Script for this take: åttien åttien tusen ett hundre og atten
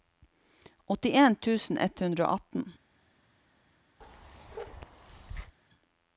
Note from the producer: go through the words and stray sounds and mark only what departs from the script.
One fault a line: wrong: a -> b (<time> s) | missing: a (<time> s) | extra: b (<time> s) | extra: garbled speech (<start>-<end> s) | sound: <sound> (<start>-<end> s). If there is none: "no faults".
missing: åttien (1.4 s)
sound: bark (4.0-5.6 s)